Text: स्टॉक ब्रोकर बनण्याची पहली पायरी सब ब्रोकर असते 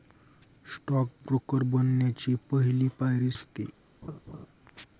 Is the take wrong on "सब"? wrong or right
wrong